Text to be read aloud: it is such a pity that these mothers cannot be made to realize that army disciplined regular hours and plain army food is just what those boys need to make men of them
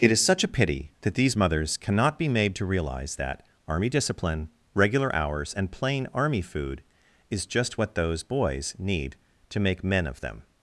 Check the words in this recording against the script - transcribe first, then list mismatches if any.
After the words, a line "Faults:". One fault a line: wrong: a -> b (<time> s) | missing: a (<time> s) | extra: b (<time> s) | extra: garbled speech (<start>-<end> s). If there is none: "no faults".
it is such a pity that these mothers cannot be made to realize that army discipline regular hours and plain army food is just what those boys need to make men of them
Faults:
wrong: disciplined -> discipline (3.9 s)